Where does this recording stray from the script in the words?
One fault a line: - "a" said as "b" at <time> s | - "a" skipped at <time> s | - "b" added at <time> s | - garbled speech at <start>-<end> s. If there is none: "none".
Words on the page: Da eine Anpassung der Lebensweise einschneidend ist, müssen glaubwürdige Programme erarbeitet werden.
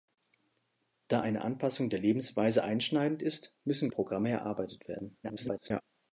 - "glaubwürdige" skipped at 3.9 s
- garbled speech at 5.2-5.8 s